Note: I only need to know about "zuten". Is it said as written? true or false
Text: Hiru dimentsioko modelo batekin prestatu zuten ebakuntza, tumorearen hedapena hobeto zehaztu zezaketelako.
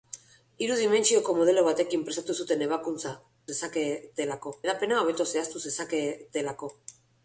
true